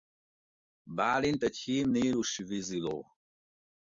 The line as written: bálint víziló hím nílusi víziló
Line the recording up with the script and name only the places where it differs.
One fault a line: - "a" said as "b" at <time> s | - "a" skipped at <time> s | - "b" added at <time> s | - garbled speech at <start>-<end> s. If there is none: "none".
- "víziló" said as "egy" at 1.4 s